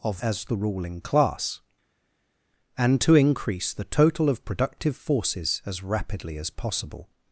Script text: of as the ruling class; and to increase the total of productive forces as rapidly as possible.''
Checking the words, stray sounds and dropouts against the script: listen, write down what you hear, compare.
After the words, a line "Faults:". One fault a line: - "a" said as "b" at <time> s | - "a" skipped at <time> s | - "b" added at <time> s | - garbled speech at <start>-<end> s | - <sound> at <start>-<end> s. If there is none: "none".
of as the ruling class; and to increase the total of productive forces as rapidly as possible.''
Faults:
none